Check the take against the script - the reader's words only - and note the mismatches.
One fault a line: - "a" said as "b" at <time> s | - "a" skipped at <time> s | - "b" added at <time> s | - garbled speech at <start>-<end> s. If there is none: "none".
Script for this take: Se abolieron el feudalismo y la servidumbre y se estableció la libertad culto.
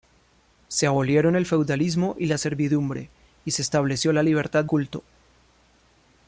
none